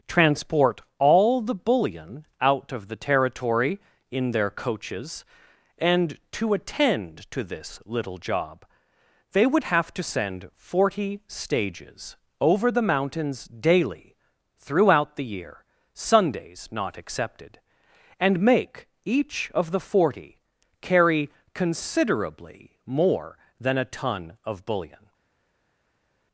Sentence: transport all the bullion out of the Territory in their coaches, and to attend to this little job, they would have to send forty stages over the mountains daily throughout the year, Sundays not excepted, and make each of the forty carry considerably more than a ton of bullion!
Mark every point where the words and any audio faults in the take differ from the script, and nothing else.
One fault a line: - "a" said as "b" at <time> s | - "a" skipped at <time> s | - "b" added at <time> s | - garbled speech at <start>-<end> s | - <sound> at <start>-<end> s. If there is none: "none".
none